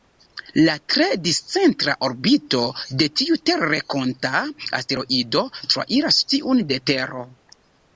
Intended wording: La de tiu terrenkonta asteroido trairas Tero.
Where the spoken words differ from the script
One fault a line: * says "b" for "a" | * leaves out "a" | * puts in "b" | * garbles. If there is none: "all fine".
* puts in "tre discentra orbito"
* puts in "tiun de"